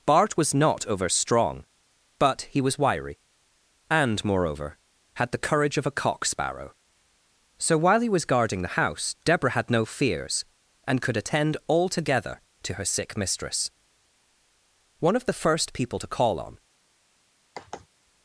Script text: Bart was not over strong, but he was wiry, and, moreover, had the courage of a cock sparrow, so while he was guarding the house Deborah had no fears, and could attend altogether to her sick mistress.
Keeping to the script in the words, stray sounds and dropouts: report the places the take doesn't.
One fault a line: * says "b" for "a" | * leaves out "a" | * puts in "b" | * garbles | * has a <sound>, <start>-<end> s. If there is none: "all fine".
* puts in "One of the first people to call on"
* has a sigh, 17.6-17.9 s